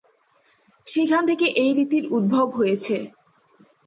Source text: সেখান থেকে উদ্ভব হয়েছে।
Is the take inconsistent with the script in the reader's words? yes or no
yes